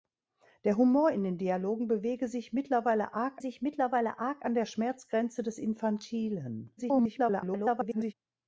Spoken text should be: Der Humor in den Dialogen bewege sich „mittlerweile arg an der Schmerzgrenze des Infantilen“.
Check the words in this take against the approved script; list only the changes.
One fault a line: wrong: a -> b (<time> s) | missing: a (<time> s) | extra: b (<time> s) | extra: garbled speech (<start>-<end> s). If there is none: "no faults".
extra: sich mittlerweile arg (3.4 s)
extra: garbled speech (6.8-8.1 s)